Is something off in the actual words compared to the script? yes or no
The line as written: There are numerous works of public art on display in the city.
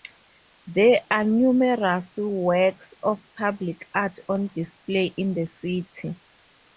no